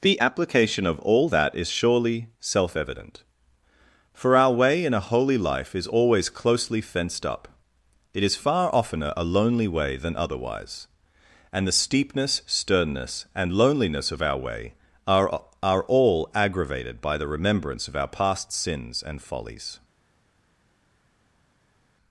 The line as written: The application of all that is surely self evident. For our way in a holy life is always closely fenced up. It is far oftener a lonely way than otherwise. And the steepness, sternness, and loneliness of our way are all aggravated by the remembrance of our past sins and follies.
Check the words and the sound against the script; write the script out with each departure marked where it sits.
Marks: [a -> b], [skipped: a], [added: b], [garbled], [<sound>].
The application of all that is surely self evident. For our way in a holy life is always closely fenced up. It is far oftener a lonely way than otherwise. And the steepness, sternness, and loneliness of our way are [added: are] all aggravated by the remembrance of our past sins and follies.